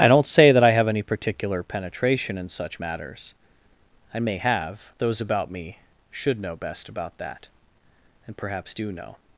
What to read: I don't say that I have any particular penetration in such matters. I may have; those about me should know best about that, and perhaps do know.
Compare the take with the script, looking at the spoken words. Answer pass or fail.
pass